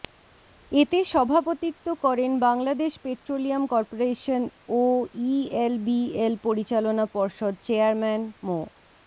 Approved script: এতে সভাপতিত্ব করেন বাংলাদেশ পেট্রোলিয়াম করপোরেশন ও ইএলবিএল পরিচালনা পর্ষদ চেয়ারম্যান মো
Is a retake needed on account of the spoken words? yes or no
no